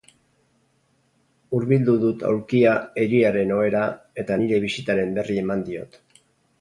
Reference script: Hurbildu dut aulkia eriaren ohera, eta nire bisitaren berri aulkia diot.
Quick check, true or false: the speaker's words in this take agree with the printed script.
false